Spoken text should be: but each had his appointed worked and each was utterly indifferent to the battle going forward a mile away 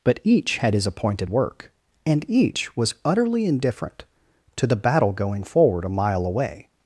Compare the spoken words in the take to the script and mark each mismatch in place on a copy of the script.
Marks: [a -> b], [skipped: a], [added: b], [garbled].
but each had his appointed [worked -> work] and each was utterly indifferent to the battle going forward a mile away